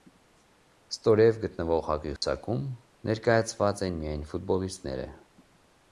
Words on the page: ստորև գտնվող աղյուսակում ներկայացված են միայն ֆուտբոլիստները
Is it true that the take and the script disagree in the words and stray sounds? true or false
true